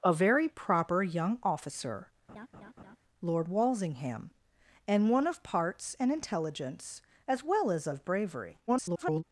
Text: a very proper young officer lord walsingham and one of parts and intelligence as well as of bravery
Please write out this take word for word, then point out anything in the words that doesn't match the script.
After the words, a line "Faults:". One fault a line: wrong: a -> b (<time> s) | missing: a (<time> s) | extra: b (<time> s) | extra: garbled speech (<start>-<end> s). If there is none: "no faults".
a very proper young officer lord walsingham and one of parts and intelligence as well as of bravery [garbled]
Faults:
extra: garbled speech (8.7-9.2 s)